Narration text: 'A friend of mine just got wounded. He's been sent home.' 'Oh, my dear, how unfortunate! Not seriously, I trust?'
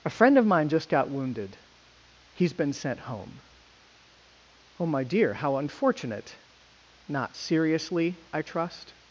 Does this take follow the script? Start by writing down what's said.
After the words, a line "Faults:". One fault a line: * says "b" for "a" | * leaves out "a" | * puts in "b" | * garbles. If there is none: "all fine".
'A friend of mine just got wounded. He's been sent home.' 'Oh, my dear, how unfortunate! Not seriously, I trust?'
Faults:
all fine